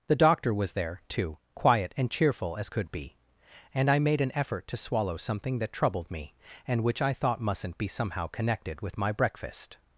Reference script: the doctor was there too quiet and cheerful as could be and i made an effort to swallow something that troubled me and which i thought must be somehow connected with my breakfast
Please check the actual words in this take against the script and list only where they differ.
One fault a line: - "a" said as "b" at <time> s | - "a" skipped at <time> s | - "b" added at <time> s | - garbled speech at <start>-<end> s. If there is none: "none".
- "must" said as "mustn't" at 7.4 s